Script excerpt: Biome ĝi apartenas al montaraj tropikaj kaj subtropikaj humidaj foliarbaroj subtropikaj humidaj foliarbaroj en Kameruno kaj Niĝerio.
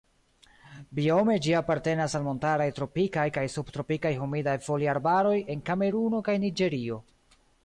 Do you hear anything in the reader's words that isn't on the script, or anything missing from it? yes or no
yes